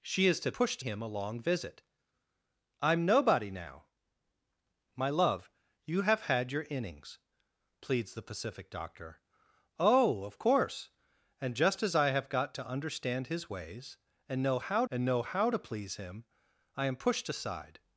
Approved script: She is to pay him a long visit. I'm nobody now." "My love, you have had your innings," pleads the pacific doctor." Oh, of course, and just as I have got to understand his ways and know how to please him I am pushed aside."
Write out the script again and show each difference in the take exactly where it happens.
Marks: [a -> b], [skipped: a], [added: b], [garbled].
She is to [pay -> pushed] him a long visit. I'm nobody now." "My love, you have had your innings," pleads the pacific doctor." Oh, of course, and just as I have got to understand his ways and know how [added: and know how] to please him I am pushed aside."